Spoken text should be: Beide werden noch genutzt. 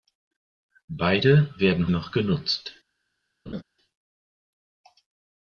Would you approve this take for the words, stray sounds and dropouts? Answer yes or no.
no